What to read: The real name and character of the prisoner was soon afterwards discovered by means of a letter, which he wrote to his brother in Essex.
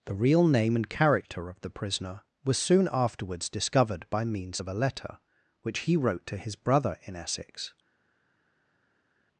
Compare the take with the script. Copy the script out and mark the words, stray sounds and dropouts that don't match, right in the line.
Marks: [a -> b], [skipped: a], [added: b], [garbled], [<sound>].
The real name and character of the prisoner was soon afterwards discovered by means of a letter, which he wrote to his brother in Essex.